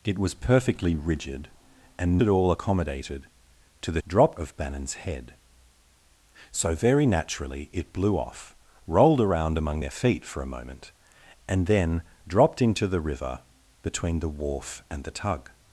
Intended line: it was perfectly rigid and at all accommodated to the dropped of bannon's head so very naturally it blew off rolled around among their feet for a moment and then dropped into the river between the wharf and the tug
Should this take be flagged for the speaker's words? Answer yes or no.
no